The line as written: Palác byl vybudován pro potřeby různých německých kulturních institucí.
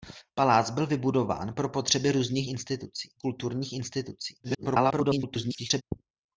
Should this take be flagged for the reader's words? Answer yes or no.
yes